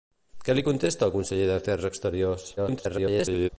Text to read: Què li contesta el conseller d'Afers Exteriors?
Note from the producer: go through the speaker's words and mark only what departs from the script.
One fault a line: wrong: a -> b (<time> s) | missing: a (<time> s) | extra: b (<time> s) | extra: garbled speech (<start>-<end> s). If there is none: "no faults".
extra: garbled speech (2.6-3.5 s)